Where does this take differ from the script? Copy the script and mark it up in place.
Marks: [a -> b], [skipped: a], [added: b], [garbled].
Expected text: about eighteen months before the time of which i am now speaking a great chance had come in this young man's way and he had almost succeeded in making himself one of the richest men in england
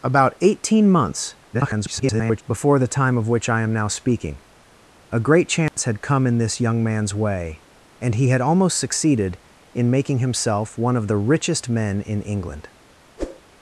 about eighteen months [garbled] before the time of which i am now speaking a great chance had come in this young man's way and he had almost succeeded in making himself one of the richest men in england